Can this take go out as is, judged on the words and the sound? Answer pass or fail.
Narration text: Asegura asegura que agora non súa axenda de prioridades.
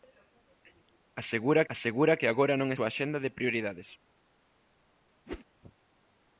fail